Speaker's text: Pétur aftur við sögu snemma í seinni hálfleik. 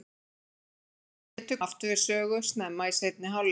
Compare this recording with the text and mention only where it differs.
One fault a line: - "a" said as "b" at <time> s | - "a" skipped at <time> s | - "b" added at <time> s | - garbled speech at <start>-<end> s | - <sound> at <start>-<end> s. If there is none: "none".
none